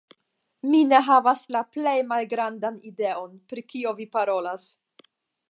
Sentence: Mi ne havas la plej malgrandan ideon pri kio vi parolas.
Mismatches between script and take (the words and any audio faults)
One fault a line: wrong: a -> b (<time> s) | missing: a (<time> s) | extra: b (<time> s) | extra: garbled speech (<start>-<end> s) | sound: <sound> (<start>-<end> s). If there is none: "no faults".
no faults